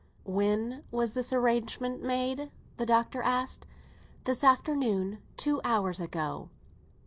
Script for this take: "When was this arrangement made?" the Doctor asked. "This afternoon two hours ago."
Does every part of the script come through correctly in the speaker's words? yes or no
yes